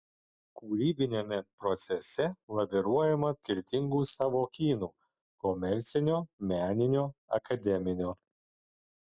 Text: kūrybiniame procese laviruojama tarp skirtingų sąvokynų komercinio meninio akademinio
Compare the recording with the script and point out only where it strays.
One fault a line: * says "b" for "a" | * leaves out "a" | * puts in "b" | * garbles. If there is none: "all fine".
* leaves out "tarp"